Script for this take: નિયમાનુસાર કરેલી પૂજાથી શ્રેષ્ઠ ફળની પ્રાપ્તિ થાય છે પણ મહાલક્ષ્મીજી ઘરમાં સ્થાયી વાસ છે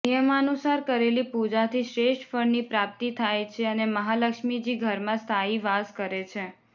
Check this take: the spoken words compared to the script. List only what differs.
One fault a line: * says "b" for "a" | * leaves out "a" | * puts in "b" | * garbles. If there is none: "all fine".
* says "અને" for "પણ"
* puts in "કરે"